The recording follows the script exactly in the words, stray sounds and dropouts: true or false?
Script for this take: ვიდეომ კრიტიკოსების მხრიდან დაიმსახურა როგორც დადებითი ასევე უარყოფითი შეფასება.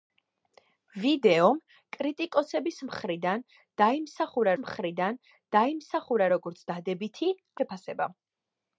false